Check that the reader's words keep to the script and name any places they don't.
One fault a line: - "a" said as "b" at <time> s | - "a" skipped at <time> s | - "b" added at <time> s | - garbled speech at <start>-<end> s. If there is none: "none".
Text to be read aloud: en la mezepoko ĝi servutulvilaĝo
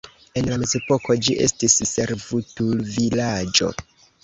- "estis" added at 1.4 s